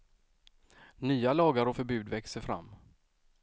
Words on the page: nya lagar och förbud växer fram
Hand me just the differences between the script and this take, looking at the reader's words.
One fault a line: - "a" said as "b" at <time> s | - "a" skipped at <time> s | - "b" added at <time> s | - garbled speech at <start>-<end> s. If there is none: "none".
none